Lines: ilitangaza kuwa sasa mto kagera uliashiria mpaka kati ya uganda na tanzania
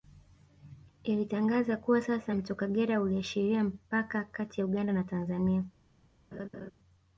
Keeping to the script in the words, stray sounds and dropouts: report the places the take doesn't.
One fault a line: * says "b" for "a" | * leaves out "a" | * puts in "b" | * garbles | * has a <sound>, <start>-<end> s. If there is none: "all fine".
* has a laugh, 6.3-6.7 s